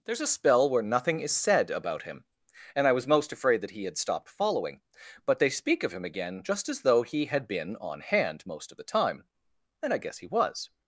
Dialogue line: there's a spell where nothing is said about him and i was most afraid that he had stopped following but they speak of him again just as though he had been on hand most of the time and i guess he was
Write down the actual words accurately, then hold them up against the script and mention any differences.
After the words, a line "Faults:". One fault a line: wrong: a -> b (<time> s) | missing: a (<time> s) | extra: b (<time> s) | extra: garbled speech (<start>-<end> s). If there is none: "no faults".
there's a spell where nothing is said about him and i was most afraid that he had stopped following but they speak of him again just as though he had been on hand most of the time and i guess he was
Faults:
no faults